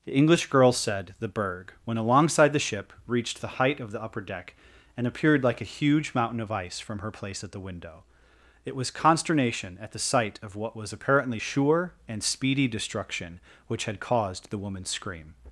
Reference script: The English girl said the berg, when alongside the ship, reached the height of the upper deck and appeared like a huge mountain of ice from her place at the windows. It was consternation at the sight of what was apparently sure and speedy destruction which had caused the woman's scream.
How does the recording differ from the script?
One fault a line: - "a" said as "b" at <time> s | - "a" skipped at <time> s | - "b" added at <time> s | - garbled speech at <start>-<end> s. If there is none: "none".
- "windows" said as "window" at 7.6 s